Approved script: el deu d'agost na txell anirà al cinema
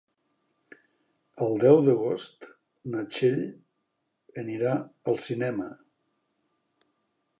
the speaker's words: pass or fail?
pass